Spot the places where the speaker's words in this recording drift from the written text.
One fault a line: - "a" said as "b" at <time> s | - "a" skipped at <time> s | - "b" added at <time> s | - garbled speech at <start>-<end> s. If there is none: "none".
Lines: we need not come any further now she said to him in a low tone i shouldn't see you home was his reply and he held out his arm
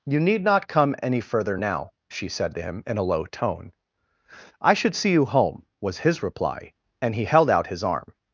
- "we" said as "you" at 0.0 s
- "shouldn't" said as "should" at 4.7 s